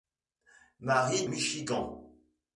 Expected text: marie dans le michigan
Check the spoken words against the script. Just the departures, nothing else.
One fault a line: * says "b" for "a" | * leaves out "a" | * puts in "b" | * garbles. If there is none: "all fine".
* leaves out "dans le"